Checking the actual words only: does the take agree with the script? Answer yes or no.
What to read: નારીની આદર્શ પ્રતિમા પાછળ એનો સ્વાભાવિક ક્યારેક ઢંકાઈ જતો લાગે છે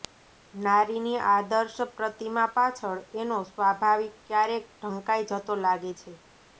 yes